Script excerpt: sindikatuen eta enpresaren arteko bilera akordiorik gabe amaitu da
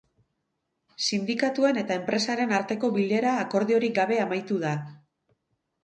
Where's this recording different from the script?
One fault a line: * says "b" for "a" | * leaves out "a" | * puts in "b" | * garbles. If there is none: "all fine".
all fine